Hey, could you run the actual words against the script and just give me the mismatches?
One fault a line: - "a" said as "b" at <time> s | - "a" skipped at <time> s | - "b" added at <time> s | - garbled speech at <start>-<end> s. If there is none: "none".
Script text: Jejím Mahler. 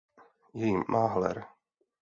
none